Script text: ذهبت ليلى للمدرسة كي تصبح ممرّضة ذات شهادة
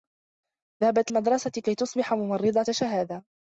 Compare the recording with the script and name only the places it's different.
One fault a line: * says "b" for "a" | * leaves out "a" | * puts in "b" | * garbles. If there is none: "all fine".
* leaves out "ليلى"
* leaves out "ذات"